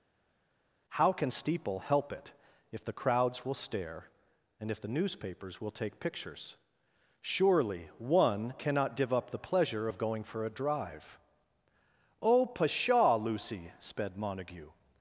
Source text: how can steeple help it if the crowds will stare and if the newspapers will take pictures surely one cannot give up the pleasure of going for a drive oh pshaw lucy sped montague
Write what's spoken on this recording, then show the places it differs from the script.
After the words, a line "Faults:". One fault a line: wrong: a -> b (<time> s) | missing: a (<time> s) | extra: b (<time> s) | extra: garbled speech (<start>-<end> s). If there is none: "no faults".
how can steeple help it if the crowds will stare and if the newspapers will take pictures surely one cannot give up the pleasure of going for a drive oh pshaw lucy sped montague
Faults:
no faults